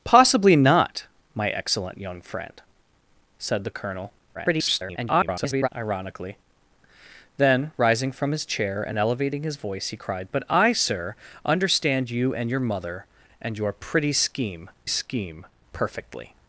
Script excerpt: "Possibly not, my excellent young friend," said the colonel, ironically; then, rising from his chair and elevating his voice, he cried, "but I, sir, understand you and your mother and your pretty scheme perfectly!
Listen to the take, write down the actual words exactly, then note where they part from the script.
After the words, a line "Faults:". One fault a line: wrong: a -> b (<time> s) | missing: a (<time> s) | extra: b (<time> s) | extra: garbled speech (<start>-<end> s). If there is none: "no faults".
"Possibly not, my excellent young friend," said the colonel, [garbled] ironically; then, rising from his chair and elevating his voice, he cried, "but I, sir, understand you and your mother and your pretty scheme scheme perfectly!
Faults:
extra: garbled speech (4.3-5.7 s)
extra: scheme (14.9 s)